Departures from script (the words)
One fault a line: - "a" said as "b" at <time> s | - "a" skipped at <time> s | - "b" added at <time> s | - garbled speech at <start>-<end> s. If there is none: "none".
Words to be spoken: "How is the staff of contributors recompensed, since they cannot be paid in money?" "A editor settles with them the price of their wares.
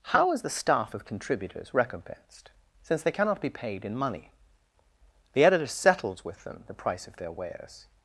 - "A" said as "The" at 5.3 s